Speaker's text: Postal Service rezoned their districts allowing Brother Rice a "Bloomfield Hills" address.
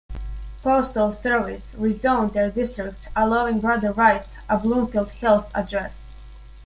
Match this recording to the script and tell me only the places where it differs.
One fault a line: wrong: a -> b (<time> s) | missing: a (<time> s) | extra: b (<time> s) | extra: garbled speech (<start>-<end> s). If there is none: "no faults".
no faults